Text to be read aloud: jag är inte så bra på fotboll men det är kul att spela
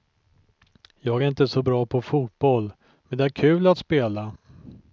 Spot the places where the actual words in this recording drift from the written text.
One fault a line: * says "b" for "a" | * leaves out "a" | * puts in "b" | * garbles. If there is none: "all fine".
all fine